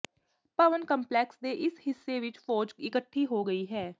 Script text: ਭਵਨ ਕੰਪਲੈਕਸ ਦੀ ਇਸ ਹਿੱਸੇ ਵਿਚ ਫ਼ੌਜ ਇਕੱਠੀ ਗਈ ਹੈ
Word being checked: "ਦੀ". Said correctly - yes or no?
no